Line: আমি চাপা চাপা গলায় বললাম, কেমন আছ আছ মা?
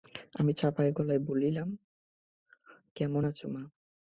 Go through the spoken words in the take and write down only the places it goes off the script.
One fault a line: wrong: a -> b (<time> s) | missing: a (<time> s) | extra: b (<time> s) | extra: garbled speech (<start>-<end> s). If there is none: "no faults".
missing: চাপা (0.8 s)
missing: আছ (3.4 s)